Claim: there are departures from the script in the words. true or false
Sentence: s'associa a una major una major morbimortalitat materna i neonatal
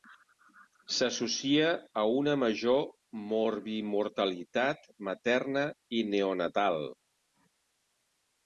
true